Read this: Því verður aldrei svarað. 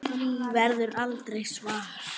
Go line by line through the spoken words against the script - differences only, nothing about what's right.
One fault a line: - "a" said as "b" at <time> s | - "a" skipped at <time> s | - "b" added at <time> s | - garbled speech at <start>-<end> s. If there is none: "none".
none